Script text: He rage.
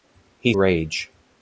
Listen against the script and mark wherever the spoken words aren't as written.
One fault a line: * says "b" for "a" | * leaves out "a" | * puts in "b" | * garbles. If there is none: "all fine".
all fine